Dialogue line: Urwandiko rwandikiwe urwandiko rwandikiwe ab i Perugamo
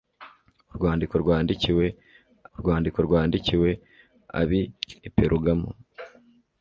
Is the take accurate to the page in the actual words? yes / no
yes